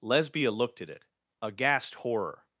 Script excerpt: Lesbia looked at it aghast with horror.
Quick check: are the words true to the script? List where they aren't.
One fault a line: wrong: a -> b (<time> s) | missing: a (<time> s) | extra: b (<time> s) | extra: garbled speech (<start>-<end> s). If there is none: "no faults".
missing: with (1.9 s)